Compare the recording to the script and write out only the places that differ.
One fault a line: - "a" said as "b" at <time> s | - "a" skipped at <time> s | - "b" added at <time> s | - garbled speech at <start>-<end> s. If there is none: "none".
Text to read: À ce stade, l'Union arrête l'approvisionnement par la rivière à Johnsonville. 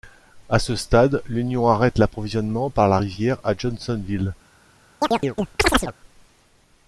none